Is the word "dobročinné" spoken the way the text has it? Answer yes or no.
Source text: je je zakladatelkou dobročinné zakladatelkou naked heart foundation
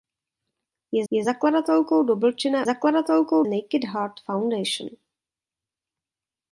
yes